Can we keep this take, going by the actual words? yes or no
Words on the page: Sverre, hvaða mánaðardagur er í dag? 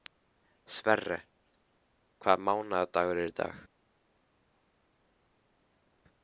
yes